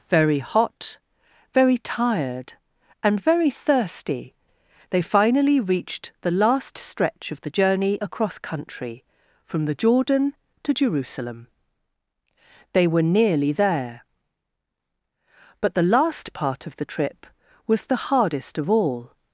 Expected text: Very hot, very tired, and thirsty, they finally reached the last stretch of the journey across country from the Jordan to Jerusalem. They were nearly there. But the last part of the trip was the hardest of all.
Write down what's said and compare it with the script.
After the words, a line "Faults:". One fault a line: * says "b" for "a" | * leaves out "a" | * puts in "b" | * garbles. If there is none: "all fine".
Very hot, very tired, and very thirsty, they finally reached the last stretch of the journey across country from the Jordan to Jerusalem. They were nearly there. But the last part of the trip was the hardest of all.
Faults:
* puts in "very"